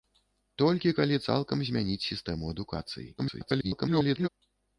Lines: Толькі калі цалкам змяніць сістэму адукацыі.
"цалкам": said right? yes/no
yes